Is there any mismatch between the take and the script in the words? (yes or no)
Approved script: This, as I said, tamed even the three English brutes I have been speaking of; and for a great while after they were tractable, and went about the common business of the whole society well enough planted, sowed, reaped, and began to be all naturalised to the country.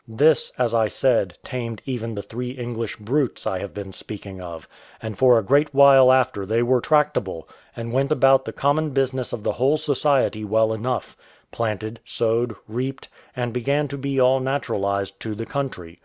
no